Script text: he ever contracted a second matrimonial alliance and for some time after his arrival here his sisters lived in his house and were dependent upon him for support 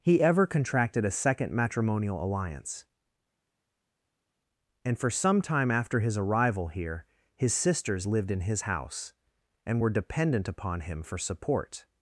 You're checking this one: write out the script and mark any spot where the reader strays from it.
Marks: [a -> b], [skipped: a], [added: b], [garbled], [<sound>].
he ever contracted a second matrimonial alliance and for some time after his arrival here his sisters lived in his house and were dependent upon him for support